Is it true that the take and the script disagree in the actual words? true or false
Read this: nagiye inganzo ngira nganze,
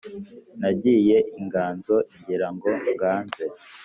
true